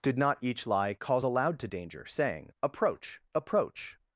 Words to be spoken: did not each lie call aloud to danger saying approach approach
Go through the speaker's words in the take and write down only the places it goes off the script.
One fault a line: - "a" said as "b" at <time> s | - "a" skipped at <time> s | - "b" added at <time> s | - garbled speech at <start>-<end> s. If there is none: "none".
- "call" said as "calls" at 0.9 s